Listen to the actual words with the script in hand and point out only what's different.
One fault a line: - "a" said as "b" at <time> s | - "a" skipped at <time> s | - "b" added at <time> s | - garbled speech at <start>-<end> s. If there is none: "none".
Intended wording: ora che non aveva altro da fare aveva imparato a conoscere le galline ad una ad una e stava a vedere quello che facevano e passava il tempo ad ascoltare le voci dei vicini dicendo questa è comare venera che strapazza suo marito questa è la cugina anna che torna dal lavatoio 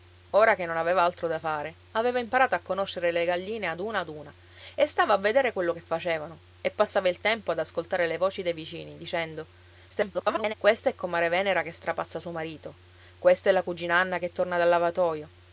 - garbled speech at 9.9-10.5 s